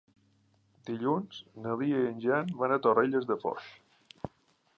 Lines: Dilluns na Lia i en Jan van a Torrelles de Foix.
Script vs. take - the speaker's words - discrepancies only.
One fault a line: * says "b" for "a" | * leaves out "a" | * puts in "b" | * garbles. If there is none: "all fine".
all fine